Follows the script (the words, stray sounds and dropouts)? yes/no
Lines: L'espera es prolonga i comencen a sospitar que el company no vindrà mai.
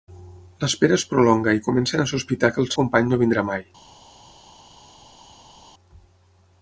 yes